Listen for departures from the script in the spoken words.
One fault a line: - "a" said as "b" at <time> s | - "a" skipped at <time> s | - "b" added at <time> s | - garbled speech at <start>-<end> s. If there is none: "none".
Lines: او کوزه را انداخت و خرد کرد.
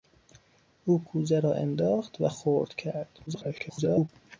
- garbled speech at 3.3-4.1 s